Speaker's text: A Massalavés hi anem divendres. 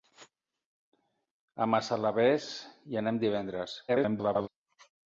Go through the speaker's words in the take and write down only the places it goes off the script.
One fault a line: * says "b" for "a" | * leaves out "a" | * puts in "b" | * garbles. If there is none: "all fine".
* garbles